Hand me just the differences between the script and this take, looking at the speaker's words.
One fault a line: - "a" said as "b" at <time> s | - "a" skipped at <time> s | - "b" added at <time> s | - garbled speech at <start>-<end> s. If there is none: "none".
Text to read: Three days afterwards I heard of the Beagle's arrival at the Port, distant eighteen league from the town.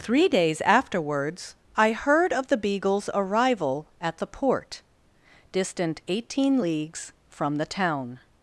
- "league" said as "leagues" at 6.6 s